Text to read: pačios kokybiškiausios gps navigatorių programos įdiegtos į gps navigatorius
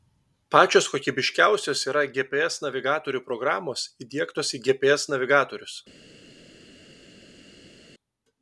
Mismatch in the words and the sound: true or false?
true